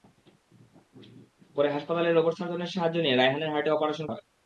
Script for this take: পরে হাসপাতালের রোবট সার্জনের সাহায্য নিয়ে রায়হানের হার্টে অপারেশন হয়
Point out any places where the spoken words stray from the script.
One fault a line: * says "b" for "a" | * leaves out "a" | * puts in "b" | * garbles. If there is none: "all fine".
all fine